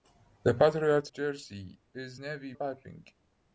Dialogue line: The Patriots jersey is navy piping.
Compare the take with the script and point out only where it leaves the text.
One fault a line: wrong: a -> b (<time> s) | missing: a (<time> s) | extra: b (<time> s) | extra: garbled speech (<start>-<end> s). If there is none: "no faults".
no faults